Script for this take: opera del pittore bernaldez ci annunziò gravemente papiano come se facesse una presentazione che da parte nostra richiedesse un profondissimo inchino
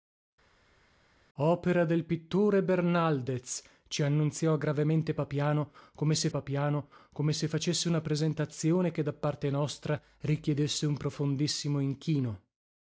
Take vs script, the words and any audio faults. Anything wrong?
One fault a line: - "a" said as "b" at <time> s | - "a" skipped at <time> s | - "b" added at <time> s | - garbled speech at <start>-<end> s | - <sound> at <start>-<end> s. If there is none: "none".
- "papiano come se" added at 6.3 s